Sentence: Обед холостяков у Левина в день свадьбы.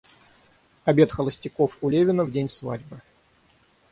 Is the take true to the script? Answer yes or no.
yes